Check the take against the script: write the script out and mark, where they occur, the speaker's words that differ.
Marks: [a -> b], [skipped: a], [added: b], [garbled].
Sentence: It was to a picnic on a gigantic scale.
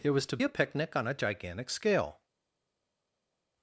It was to a picnic on a gigantic scale.